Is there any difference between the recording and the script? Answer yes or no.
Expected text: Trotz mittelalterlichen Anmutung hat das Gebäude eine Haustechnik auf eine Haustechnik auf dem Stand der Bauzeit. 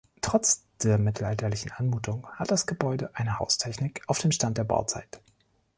yes